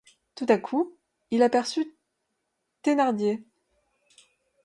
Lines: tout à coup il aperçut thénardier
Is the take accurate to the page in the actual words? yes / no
yes